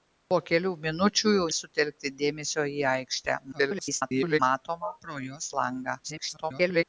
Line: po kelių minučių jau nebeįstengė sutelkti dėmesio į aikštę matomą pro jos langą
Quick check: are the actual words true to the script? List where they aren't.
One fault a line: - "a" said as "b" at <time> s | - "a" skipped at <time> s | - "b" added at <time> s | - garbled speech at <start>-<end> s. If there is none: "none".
- "nebeįstengė" skipped at 1.4 s
- garbled speech at 3.5-4.4 s
- garbled speech at 6.0-6.8 s